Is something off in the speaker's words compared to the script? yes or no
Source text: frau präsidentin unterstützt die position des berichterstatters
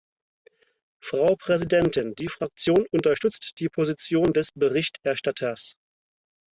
yes